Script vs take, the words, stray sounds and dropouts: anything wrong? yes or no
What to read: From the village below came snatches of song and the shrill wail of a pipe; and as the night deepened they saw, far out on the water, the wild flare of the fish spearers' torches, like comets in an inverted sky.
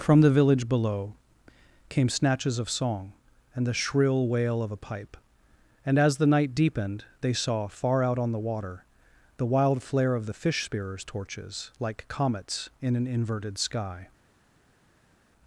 no